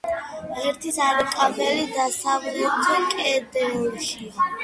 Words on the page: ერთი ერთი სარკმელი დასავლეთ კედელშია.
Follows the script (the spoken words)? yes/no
no